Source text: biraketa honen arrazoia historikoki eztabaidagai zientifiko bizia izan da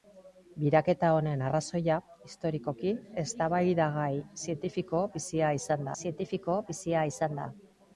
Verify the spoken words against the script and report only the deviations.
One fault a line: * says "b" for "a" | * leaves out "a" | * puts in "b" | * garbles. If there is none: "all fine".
* puts in "zientifiko bizia izan"